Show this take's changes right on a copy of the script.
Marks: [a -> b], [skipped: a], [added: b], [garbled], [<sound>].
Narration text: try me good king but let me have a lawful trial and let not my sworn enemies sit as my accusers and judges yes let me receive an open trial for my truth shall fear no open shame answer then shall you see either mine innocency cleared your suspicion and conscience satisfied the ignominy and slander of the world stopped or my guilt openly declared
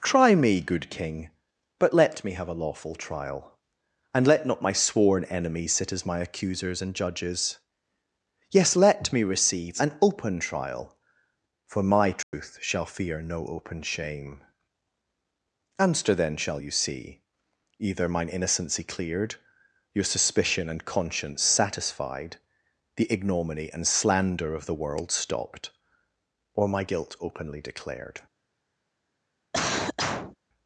try me good king but let me have a lawful trial and let not my sworn enemies sit as my accusers and judges yes let me receive an open trial for my truth [dropout] shall fear no open shame answer then shall you see either mine innocency cleared your suspicion and conscience satisfied the ignominy and slander of the world stopped or my guilt openly declared [cough]